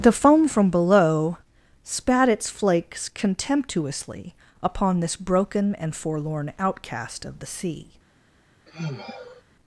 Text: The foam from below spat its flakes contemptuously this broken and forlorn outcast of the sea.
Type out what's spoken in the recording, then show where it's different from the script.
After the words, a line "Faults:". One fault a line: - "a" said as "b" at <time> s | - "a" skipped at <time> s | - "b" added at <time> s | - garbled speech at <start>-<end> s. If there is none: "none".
The foam from below spat its flakes contemptuously upon this broken and forlorn outcast of the sea.
Faults:
- "upon" added at 4.6 s